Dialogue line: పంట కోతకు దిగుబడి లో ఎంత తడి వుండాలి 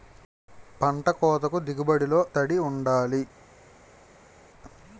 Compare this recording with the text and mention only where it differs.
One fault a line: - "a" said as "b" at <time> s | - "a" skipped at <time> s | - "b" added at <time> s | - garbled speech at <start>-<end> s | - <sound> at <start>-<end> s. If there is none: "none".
- "ఎంత" skipped at 2.2 s